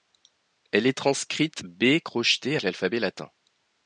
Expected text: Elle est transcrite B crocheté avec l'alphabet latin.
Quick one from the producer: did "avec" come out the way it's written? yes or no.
no